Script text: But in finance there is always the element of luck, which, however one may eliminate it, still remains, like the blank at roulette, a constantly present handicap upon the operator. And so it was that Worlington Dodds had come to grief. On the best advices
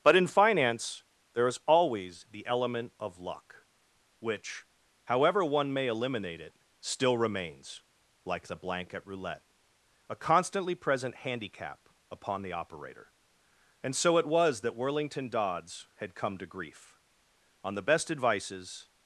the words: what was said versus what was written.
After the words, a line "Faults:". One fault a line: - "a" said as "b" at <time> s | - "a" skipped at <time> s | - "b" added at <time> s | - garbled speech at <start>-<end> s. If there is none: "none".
But in finance there is always the element of luck, which, however one may eliminate it, still remains, like the blank at roulette, a constantly present handicap upon the operator. And so it was that Worlington Dodds had come to grief. On the best advices
Faults:
none